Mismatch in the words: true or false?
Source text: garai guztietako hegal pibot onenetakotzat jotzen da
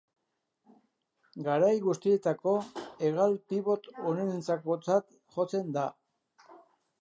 false